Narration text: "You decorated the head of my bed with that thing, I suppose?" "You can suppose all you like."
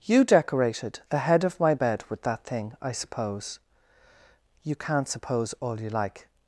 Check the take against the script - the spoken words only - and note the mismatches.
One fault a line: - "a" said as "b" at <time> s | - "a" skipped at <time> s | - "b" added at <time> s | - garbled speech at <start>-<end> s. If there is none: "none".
- "can" said as "can't" at 4.8 s